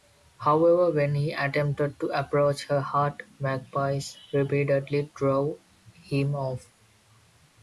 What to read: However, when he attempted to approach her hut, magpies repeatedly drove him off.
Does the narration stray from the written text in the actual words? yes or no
no